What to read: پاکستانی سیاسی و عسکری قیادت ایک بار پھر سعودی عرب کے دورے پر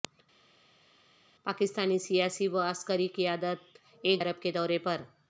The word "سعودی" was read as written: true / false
false